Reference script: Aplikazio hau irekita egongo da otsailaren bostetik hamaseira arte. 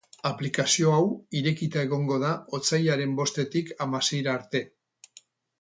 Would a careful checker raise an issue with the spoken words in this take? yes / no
no